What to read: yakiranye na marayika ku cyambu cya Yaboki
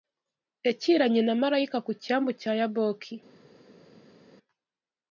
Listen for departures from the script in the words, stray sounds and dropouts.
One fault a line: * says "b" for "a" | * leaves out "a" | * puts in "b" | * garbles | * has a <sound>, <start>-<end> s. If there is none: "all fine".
all fine